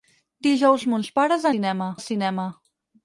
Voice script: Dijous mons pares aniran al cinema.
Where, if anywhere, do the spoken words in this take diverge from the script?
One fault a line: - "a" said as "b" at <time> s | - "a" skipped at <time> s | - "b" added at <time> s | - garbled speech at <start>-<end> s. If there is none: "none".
- "aniran" said as "cinema" at 1.5 s